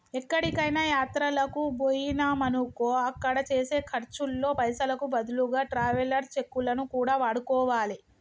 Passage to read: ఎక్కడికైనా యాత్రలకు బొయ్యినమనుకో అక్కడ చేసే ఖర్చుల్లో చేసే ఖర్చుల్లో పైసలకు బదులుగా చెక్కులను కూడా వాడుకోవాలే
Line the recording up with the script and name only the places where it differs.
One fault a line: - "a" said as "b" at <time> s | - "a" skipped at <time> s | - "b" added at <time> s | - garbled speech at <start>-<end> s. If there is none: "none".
- "చేసే ఖర్చుల్లో" skipped at 4.5 s
- "ట్రావెలర్స్" added at 5.7 s